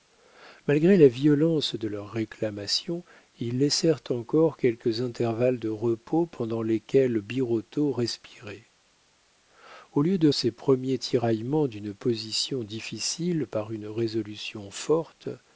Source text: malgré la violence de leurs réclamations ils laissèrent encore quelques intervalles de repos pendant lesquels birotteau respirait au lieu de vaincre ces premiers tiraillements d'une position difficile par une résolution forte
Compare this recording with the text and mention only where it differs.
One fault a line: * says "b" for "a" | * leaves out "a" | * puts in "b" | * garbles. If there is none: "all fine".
* leaves out "vaincre"